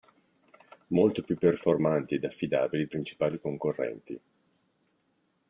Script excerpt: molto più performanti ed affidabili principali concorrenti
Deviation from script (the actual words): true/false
false